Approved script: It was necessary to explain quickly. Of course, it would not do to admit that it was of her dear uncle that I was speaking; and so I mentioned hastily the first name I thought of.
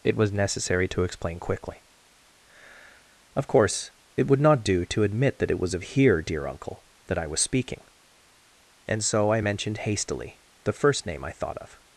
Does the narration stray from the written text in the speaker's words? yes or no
yes